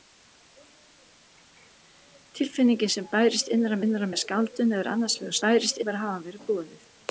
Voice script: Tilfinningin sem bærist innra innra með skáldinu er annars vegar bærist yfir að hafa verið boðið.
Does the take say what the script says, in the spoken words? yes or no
yes